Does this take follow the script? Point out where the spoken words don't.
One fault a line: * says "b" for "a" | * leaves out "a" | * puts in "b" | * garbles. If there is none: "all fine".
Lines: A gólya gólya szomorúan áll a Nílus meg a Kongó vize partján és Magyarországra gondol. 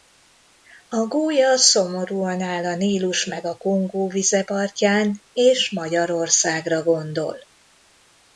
* leaves out "gólya"